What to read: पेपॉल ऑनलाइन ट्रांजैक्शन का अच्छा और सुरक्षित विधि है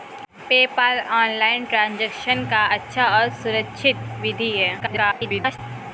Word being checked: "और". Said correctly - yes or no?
yes